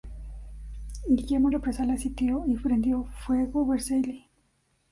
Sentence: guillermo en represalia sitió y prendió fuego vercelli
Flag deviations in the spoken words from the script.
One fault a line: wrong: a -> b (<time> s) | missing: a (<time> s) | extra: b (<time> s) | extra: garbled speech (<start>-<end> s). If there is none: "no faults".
no faults